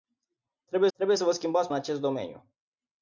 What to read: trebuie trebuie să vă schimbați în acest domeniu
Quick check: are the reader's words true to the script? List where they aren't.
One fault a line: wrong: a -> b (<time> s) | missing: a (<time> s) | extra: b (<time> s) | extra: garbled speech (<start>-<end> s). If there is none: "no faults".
no faults